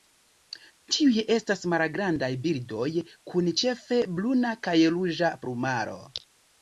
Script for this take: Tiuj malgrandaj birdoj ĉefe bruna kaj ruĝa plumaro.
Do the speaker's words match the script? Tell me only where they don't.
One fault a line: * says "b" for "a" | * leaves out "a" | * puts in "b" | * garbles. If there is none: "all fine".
* puts in "estas"
* puts in "kun"